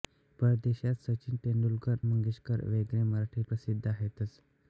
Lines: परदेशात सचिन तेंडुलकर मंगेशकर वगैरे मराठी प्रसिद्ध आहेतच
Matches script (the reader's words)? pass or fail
pass